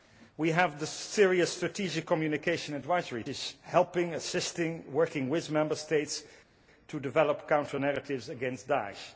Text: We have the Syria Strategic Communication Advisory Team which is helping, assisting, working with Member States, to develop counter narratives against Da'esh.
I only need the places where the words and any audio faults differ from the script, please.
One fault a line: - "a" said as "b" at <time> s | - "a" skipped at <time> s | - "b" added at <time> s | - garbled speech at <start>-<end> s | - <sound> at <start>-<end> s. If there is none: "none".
- "Team which" skipped at 3.2 s